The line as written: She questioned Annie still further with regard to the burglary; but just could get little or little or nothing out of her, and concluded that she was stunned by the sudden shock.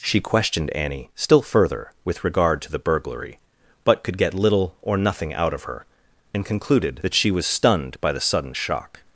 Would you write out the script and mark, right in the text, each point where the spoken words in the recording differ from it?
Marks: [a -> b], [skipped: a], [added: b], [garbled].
She questioned Annie still further with regard to the burglary; but [skipped: just] could get little or [skipped: little or] nothing out of her, and concluded that she was stunned by the sudden shock.